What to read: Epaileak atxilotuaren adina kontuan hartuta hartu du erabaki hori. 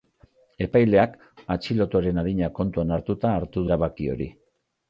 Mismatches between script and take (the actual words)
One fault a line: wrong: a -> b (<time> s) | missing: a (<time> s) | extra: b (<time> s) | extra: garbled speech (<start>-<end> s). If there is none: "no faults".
missing: du (3.7 s)